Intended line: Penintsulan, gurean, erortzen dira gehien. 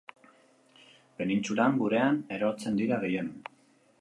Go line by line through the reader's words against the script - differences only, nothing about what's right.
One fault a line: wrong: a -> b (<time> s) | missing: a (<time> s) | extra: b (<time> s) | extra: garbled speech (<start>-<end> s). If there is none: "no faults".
no faults